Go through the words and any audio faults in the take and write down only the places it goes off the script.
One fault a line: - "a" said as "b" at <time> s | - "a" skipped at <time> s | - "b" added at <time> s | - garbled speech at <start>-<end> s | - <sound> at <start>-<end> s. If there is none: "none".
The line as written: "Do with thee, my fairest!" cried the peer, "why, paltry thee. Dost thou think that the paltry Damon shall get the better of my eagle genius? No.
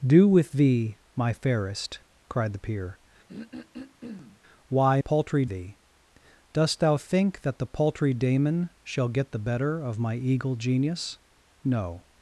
- throat clearing at 3.3-4.4 s